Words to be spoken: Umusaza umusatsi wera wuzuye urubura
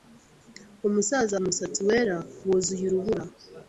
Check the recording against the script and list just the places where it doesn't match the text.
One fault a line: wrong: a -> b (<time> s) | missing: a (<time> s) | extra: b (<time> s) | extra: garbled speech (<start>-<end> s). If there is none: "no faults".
no faults